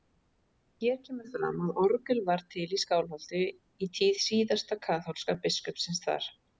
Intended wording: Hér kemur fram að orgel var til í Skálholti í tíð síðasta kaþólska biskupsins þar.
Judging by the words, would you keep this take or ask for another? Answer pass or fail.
pass